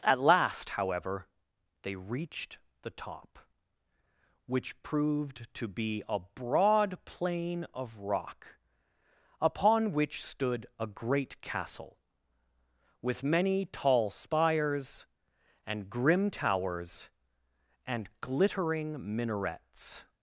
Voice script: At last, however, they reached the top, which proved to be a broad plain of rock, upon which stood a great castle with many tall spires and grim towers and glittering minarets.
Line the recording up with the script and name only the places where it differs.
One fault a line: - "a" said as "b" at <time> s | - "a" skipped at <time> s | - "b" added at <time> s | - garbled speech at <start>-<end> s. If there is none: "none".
none